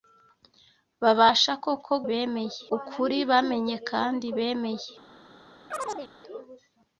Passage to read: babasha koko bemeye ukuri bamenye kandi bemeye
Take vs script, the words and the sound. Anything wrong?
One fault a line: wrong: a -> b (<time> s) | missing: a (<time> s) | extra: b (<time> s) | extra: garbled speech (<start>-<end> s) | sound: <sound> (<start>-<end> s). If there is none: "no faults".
sound: chirp (5.7-6.1 s)